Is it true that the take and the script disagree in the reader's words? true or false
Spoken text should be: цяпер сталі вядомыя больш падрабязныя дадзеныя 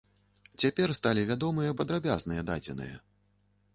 true